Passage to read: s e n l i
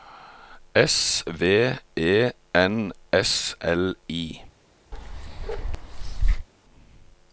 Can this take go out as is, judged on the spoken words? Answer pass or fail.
fail